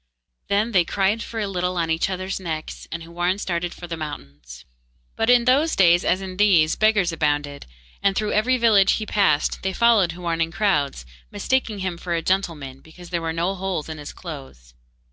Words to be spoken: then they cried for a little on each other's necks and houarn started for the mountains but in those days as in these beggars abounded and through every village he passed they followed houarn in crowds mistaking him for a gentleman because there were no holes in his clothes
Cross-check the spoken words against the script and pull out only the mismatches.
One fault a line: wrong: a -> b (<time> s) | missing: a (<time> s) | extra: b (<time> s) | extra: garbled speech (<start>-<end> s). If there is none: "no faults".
no faults